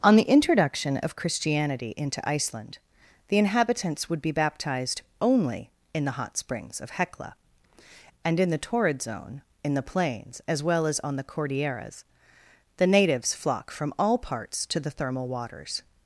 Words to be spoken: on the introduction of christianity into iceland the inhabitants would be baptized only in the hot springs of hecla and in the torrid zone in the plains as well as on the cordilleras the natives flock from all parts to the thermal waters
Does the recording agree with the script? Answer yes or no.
yes